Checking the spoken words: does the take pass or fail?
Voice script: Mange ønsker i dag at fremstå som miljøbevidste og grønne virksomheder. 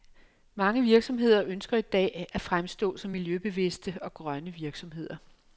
fail